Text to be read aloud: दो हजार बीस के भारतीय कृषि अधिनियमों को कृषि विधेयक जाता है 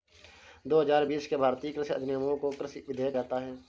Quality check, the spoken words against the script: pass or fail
pass